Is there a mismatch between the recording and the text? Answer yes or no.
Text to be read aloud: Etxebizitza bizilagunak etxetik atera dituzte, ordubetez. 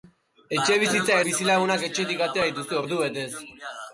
no